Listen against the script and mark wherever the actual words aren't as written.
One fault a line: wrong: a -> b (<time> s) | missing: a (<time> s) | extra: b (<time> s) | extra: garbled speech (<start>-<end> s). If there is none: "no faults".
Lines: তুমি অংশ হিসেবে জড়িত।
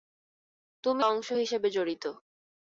no faults